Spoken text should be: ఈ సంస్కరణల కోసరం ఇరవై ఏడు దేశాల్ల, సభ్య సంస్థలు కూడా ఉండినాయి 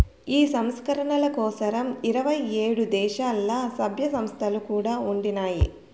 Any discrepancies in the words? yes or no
no